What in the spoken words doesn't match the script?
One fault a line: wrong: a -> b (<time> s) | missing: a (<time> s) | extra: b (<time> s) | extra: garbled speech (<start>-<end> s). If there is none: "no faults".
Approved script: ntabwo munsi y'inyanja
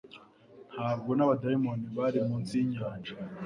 extra: n'abadayimoni bari (1.1 s)